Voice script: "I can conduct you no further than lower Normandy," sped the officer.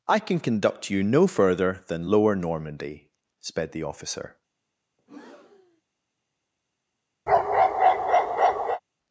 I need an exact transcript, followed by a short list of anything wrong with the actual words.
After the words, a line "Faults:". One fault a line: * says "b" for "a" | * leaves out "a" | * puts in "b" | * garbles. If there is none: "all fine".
"I can conduct you no further than lower Normandy," sped the officer.
Faults:
all fine